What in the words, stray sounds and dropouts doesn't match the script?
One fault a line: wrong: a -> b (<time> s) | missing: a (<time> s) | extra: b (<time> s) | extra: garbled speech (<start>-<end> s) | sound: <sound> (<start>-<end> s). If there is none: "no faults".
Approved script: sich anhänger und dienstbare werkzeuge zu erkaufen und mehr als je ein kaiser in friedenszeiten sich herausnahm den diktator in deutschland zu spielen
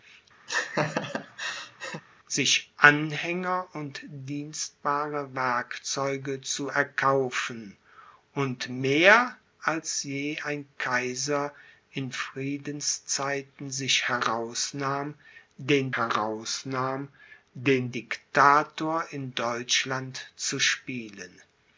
sound: laugh (0.5-2.0 s)
extra: herausnahm den (15.9 s)